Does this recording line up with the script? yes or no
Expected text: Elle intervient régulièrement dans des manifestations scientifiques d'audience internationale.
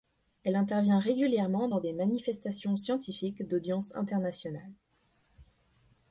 yes